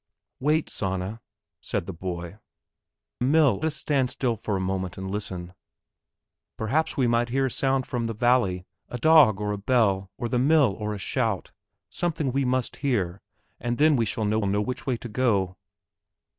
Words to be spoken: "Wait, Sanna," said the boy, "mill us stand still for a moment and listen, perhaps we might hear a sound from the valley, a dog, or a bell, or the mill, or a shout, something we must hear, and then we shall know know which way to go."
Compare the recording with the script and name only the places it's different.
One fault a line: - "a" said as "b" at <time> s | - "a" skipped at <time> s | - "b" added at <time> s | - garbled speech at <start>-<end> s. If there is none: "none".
none